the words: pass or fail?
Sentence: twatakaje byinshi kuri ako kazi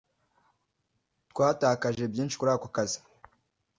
pass